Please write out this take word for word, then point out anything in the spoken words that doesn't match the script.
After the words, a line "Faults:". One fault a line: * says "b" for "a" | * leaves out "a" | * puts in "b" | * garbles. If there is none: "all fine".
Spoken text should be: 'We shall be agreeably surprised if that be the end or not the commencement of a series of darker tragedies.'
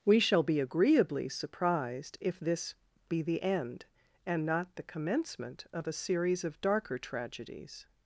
'We shall be agreeably surprised if this be the end and not the commencement of a series of darker tragedies.'
Faults:
* says "this" for "that"
* says "and" for "or"